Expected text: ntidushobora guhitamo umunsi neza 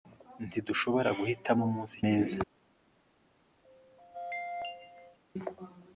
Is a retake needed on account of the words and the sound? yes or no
yes